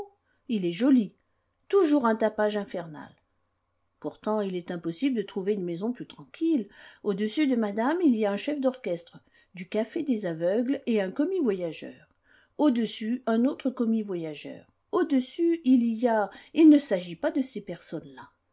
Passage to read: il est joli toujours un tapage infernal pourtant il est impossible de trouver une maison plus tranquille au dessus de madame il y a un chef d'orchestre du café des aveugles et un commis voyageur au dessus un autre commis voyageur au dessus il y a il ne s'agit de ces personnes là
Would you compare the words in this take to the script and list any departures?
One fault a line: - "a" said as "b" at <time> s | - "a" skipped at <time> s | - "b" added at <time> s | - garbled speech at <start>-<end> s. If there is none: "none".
- "pas" added at 17.1 s